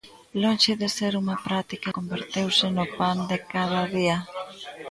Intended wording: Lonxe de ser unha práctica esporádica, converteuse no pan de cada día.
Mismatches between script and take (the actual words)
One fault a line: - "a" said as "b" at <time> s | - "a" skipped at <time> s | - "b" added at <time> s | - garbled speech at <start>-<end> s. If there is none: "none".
- "esporádica" skipped at 1.9 s